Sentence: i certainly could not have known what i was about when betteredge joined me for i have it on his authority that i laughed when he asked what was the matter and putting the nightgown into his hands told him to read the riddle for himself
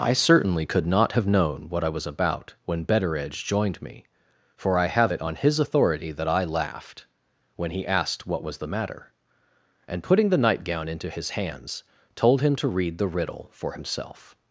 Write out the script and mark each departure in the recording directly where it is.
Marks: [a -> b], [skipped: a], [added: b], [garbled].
i certainly could not have known what i was about when betteredge joined me for i have it on his authority that i laughed when he asked what was the matter and putting the nightgown into his hands told him to read the riddle for himself